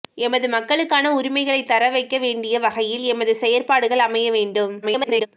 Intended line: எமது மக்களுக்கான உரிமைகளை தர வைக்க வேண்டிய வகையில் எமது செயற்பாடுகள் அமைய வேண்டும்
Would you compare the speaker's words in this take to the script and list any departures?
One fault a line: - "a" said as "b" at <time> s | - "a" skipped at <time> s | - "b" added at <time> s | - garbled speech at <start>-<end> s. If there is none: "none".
- garbled speech at 4.8-5.3 s